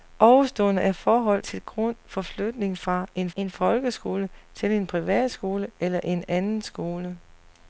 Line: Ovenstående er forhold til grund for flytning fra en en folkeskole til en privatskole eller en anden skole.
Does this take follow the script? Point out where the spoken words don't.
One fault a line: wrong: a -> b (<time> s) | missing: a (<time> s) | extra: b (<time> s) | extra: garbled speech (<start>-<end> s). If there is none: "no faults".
no faults